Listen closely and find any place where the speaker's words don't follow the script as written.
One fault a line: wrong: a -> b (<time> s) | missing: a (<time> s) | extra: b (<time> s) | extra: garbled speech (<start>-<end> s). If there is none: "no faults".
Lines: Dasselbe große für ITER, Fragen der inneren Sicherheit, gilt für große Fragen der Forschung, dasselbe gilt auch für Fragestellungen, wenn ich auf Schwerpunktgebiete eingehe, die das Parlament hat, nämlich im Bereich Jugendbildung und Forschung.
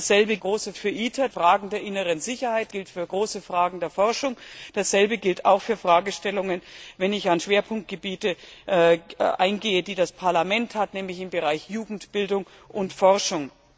no faults